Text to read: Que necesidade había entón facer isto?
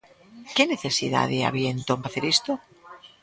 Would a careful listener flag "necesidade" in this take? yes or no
no